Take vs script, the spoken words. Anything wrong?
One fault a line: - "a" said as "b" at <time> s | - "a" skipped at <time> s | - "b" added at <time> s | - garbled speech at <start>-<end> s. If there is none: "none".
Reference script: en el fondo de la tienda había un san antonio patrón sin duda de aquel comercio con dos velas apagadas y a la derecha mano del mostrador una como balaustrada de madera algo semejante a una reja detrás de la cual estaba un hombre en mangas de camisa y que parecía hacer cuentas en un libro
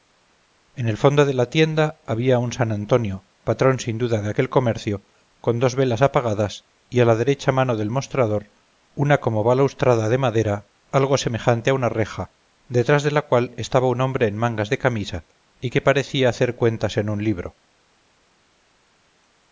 none